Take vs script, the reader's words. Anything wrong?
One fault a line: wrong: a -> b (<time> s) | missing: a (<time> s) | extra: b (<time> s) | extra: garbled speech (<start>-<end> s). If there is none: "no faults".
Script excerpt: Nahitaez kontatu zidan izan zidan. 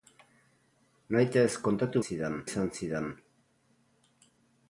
no faults